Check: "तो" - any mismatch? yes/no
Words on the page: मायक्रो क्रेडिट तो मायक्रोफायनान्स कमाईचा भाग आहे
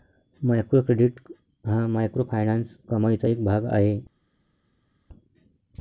yes